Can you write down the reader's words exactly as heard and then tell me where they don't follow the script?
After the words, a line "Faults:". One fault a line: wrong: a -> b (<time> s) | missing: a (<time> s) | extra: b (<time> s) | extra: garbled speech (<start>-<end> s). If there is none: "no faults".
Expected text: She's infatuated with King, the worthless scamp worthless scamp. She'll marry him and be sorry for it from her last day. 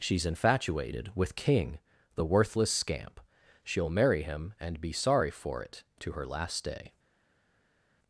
She's infatuated with King, the worthless scamp. She'll marry him and be sorry for it to her last day.
Faults:
missing: worthless scamp (3.2 s)
wrong: from -> to (6.0 s)